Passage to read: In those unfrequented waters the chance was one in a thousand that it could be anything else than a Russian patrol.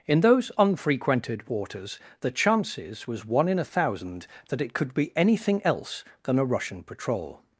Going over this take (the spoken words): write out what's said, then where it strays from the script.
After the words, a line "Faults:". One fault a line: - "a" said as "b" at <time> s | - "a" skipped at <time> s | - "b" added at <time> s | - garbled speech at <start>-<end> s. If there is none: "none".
In those unfrequented waters the chances was one in a thousand that it could be anything else than a Russian patrol.
Faults:
- "chance" said as "chances" at 2.3 s